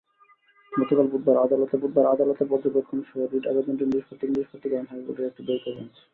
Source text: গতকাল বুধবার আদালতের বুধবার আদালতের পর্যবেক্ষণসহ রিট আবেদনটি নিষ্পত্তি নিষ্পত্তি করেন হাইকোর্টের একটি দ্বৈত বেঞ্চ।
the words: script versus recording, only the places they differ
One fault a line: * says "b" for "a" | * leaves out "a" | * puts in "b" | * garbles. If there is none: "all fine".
all fine